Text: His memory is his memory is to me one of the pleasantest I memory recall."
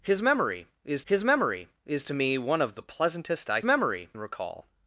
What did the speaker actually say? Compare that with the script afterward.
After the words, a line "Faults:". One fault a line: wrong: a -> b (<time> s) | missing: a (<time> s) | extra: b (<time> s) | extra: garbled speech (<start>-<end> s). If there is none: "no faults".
His memory is his memory is to me one of the pleasantest I memory recall."
Faults:
no faults